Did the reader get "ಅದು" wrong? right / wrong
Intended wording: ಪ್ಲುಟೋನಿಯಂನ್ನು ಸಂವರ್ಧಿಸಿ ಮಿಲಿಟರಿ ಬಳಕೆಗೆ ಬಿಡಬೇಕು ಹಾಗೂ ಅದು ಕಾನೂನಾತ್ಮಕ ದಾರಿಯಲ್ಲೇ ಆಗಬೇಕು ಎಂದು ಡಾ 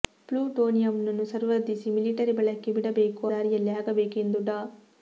wrong